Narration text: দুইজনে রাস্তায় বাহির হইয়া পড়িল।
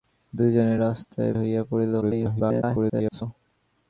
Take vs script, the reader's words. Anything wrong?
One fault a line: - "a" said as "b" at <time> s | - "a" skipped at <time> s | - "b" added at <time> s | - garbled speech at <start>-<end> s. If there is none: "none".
- "বাহির" skipped at 1.3 s
- garbled speech at 2.0-3.2 s